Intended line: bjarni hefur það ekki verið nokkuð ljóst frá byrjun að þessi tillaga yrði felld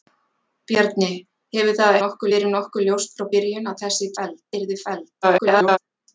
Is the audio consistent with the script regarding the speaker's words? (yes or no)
no